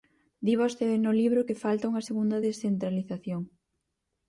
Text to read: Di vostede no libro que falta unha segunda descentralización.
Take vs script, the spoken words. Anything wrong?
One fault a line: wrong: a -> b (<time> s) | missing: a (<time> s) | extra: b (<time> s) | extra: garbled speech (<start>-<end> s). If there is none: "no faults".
no faults